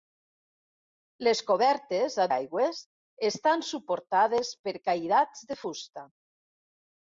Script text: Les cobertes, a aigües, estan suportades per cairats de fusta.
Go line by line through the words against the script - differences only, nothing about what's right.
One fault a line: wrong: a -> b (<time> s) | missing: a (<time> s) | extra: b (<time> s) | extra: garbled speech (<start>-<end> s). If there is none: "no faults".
no faults